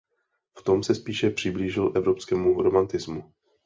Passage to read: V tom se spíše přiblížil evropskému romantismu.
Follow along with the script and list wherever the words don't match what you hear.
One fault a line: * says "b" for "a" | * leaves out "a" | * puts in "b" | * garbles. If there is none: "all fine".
all fine